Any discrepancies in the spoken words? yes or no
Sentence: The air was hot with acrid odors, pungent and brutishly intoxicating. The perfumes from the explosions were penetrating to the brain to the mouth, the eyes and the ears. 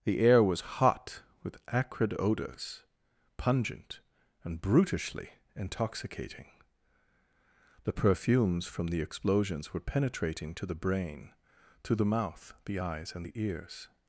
no